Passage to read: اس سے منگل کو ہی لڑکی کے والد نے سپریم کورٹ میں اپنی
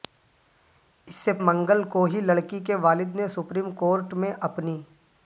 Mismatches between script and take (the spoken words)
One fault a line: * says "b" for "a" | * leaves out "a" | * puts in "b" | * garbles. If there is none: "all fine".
all fine